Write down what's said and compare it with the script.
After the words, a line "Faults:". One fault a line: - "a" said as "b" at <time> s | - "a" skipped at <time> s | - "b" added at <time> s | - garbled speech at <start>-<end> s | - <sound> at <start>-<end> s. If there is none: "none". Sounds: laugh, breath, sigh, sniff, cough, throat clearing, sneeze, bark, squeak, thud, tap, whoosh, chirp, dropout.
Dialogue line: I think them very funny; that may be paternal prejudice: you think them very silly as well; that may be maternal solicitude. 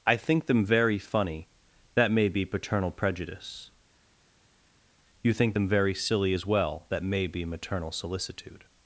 I think them very funny; that may be paternal prejudice: you think them very silly as well; that may be maternal solicitude.
Faults:
none